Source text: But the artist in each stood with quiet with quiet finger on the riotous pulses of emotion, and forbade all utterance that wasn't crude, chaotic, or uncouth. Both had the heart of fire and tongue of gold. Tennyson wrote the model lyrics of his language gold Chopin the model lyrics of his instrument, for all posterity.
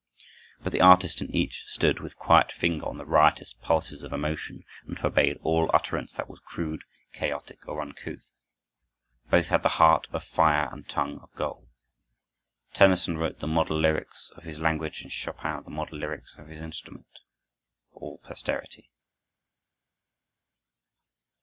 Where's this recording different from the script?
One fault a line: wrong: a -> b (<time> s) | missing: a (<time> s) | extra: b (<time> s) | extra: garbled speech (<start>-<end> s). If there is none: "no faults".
missing: with quiet (2.5 s)
wrong: wasn't -> was (6.3 s)
wrong: gold -> and (15.0 s)